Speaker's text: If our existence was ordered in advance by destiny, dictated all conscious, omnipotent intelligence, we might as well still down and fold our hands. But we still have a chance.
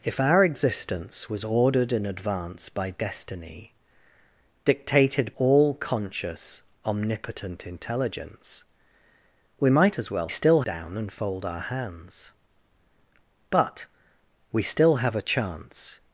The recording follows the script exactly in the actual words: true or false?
true